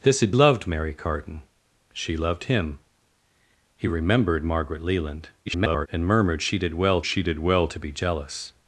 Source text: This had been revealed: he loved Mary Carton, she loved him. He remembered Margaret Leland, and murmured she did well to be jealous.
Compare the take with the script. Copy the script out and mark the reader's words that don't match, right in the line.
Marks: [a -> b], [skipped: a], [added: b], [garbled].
This had [skipped: been revealed: he] loved Mary Carton, she loved him. He remembered Margaret Leland, [garbled] and murmured she did well [added: she did well] to be jealous.